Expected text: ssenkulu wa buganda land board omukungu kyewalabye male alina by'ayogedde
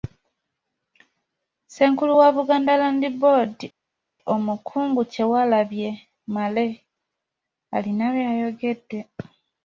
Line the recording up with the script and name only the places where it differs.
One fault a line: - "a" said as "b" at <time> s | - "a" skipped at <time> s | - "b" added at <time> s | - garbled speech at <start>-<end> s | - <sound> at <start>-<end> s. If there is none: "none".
none